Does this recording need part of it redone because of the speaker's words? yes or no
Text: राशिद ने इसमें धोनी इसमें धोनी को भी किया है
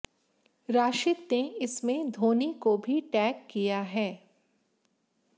yes